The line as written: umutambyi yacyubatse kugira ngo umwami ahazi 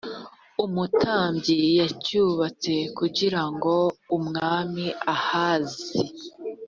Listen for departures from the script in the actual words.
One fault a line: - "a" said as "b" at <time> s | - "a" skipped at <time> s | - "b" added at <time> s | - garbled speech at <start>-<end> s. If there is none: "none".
none